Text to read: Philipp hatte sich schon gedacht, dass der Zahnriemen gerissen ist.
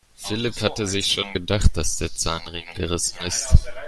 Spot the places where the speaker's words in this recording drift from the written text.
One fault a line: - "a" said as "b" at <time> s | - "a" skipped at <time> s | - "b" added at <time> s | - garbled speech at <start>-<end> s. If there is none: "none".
none